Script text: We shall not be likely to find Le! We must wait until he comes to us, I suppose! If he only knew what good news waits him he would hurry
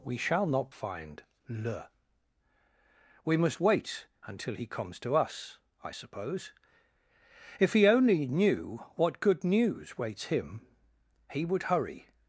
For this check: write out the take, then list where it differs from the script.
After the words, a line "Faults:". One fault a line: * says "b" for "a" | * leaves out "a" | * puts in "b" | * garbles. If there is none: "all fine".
We shall not find Le! We must wait until he comes to us, I suppose! If he only knew what good news waits him he would hurry
Faults:
* leaves out "be likely to"